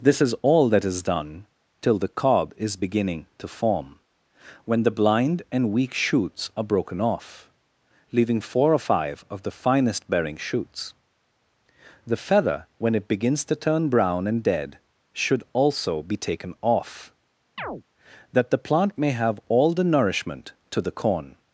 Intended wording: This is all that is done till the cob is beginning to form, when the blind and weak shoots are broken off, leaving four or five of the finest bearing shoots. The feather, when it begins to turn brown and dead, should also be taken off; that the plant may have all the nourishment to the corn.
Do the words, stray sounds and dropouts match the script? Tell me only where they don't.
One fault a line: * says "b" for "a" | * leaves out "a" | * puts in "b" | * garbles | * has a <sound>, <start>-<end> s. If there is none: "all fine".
* has a chirp, 17.6-17.8 s